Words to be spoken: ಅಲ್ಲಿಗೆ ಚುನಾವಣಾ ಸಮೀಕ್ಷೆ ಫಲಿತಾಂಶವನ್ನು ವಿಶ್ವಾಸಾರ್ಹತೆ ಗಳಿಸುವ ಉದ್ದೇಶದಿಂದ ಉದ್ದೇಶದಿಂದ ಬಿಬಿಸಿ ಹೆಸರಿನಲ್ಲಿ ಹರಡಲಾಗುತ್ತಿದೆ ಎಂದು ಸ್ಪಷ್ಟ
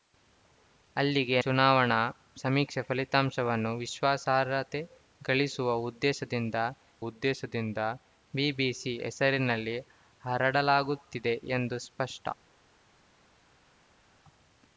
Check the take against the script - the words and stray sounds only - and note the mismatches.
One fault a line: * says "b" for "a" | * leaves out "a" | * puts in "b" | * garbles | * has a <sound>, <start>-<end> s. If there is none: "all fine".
all fine